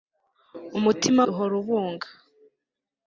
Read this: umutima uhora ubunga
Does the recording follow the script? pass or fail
pass